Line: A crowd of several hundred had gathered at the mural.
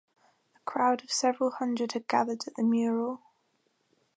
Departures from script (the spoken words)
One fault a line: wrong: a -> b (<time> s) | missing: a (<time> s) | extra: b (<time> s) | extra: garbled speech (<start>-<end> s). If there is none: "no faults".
no faults